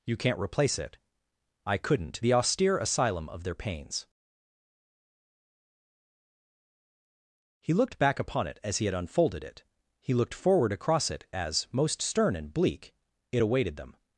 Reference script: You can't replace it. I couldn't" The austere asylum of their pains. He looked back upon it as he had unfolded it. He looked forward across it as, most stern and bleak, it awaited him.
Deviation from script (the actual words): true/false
true